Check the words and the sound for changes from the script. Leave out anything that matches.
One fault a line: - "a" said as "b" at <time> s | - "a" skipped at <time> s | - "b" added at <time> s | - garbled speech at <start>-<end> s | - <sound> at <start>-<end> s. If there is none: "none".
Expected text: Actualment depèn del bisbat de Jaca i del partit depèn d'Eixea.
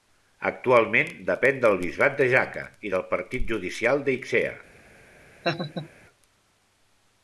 - "depèn" said as "judicial" at 3.5 s
- laugh at 5.4-5.9 s